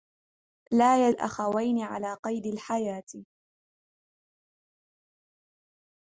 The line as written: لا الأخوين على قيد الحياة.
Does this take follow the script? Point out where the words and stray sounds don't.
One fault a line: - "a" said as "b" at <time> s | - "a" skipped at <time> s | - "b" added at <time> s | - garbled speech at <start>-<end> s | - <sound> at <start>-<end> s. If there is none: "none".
none